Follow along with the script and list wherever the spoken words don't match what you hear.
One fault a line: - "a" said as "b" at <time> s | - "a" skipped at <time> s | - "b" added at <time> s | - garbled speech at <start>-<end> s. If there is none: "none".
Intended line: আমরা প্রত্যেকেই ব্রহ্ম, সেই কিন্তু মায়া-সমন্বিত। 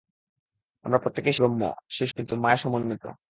none